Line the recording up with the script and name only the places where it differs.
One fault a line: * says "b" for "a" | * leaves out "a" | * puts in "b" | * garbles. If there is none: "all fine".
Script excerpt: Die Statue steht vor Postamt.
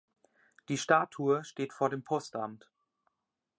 * puts in "dem"